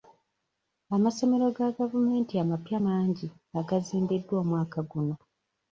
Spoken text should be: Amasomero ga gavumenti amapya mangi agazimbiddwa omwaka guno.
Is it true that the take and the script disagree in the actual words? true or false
false